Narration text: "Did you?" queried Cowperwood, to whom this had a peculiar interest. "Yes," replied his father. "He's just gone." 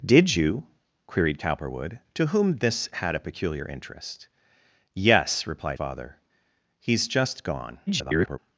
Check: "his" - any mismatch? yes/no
yes